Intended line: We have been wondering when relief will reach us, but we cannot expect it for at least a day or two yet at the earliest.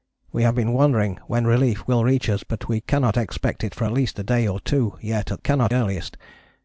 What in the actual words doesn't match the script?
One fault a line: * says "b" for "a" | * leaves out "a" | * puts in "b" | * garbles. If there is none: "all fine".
* says "cannot" for "the"